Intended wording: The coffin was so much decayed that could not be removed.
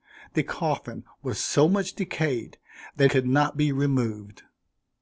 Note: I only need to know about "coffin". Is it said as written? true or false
true